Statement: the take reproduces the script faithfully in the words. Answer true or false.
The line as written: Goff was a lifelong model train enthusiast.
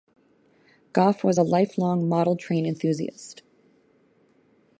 true